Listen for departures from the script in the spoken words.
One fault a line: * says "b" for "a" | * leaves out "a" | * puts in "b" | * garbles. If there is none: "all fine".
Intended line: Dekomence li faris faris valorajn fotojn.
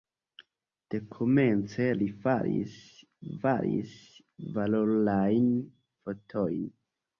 all fine